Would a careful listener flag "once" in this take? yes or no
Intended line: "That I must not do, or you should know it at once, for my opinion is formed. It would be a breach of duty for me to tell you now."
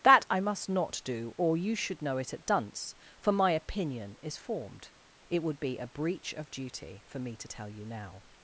yes